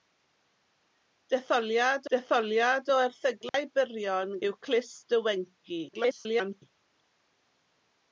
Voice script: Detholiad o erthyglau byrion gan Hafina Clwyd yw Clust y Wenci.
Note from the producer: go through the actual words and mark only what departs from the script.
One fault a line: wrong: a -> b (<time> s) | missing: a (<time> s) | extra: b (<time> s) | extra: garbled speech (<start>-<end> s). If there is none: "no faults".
extra: detholiad (2.1 s)
missing: gan Hafina Clwyd (4.3 s)
extra: garbled speech (5.9-6.6 s)